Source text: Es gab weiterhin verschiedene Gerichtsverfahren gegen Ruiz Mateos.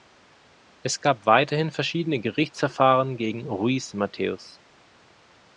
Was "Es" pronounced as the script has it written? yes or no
yes